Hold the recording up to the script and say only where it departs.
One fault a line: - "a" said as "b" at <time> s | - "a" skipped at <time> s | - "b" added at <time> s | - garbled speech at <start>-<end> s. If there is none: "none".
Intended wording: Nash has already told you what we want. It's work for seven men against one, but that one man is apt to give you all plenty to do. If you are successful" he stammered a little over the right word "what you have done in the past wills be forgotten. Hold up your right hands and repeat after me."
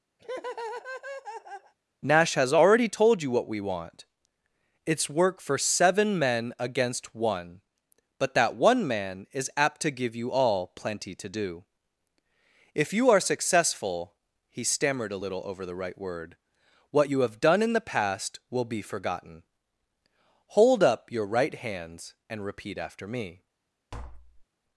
- "wills" said as "will" at 18.5 s